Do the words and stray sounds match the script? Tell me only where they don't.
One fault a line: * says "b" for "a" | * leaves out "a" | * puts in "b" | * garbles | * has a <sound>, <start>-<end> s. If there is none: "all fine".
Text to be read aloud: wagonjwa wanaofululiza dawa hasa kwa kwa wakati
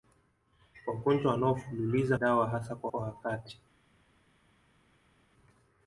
all fine